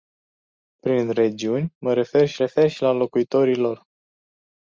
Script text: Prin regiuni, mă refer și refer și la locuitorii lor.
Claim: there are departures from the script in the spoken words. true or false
false